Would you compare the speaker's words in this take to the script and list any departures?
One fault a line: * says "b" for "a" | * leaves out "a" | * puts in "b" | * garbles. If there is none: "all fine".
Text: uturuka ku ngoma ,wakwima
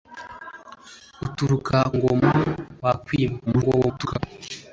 * leaves out "ku"
* garbles